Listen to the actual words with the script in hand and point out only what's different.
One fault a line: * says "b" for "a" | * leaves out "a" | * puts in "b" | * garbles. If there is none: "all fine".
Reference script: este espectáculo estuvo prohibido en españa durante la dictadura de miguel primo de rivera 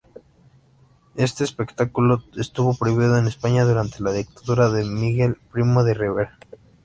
all fine